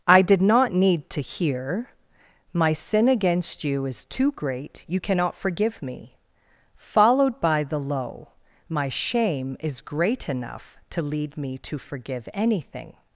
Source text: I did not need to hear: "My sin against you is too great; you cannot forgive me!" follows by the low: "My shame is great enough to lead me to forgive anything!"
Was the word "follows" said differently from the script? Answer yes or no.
yes